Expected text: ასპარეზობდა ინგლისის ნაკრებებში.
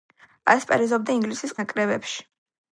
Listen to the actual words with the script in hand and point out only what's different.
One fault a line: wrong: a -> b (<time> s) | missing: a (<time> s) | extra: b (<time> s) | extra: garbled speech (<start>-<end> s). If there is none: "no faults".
no faults